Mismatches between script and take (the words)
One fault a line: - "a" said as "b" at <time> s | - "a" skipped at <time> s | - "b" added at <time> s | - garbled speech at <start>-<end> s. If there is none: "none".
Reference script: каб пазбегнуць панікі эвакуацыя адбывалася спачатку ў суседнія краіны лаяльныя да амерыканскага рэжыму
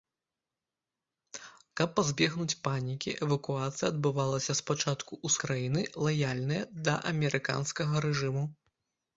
- "суседнія" skipped at 5.4 s